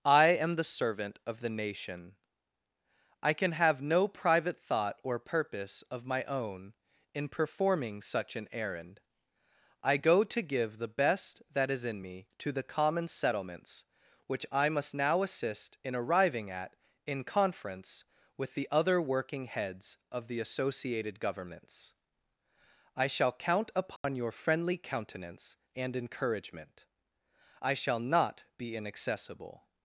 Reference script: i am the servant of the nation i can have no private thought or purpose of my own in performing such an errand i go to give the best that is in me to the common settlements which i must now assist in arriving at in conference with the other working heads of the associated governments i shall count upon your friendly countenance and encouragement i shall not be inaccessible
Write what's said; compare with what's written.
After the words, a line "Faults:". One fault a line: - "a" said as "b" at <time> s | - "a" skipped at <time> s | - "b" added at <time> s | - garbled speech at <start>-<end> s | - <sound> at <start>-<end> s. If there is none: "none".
i am the servant of the nation i can have no private thought or purpose of my own in performing such an errand i go to give the best that is in me to the common settlements which i must now assist in arriving at in conference with the other working heads of the associated governments i shall count upon your friendly countenance and encouragement i shall not be inaccessible
Faults:
- dropout at 24.0-24.0 s